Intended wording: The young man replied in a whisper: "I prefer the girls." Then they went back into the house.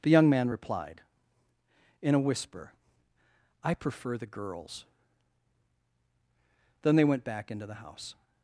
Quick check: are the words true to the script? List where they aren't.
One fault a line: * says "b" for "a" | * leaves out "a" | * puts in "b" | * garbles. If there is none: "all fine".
all fine